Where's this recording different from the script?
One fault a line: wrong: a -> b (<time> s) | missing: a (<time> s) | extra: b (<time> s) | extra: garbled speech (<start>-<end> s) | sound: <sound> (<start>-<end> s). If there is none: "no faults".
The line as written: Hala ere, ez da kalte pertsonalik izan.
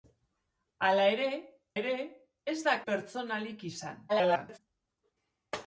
extra: ere (1.8 s)
missing: kalte (2.7 s)
extra: garbled speech (4.1-4.6 s)